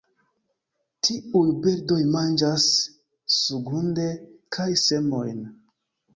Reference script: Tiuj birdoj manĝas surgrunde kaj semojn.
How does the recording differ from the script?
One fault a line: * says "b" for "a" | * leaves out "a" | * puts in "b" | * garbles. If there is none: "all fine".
all fine